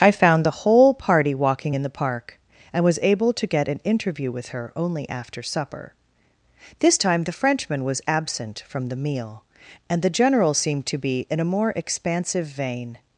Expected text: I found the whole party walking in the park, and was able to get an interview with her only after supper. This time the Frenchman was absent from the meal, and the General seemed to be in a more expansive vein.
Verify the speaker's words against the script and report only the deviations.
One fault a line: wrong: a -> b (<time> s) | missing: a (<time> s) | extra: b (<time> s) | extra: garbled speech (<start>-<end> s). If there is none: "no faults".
no faults